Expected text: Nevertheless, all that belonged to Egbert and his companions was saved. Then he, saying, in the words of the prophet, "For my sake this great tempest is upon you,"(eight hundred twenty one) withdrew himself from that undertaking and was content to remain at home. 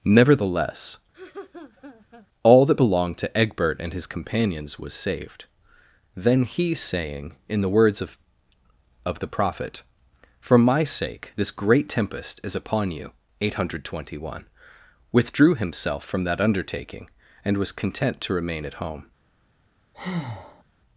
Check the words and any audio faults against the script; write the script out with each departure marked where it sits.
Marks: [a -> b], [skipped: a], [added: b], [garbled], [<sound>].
Nevertheless, [laugh] all that belonged to Egbert and his companions was saved. Then he, saying, in the words of [added: of] the prophet, "For my sake this great tempest is upon you,"(eight hundred twenty one) withdrew himself from that undertaking and was content to remain at home. [breath]